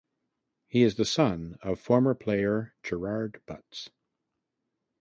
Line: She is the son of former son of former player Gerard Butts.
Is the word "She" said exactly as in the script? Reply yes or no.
no